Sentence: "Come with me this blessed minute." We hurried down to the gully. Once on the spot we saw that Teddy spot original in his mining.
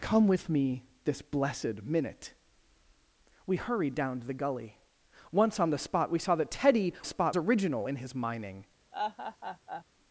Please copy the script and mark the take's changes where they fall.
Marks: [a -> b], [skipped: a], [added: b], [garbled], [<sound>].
"Come with me this blessed minute." We hurried down to the gully. Once on the spot we saw that Teddy spot original in his mining. [laugh]